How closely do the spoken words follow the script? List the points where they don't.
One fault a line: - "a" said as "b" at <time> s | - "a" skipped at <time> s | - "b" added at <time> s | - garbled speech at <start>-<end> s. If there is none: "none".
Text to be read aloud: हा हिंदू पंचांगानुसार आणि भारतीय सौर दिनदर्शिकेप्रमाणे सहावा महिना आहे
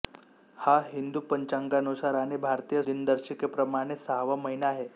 - "सौर" skipped at 2.8 s